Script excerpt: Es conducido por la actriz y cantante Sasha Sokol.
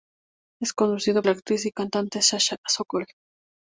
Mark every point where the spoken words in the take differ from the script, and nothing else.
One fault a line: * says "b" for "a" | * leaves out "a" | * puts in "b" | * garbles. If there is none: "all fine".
* leaves out "por"